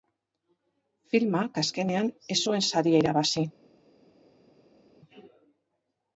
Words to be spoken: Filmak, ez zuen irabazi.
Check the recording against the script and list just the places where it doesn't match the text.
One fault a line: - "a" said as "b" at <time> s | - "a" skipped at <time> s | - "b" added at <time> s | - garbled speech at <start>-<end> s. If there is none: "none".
- "azkenean" added at 1.6 s
- "saria" added at 2.7 s